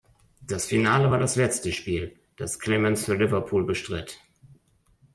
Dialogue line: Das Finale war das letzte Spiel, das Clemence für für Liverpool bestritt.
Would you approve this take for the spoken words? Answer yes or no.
no